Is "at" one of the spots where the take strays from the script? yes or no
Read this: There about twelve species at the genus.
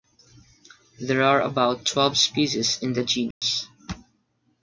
yes